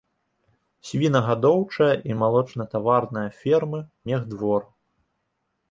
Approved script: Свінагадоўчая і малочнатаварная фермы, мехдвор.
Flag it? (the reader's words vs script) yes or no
no